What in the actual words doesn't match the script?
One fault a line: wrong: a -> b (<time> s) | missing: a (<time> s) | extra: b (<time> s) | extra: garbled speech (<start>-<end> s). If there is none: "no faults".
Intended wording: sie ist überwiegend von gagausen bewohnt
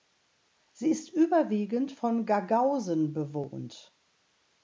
no faults